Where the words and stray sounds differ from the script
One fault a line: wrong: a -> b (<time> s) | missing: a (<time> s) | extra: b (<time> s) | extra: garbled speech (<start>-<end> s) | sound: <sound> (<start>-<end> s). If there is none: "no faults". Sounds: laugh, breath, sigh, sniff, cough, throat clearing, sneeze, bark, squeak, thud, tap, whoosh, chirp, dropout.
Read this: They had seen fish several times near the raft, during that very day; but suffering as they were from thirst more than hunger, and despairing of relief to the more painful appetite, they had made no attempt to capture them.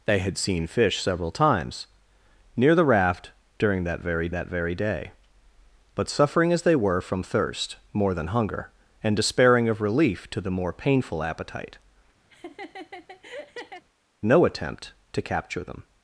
extra: that very (4.3 s)
missing: they had made (11.8 s)
sound: laugh (12.3-13.8 s)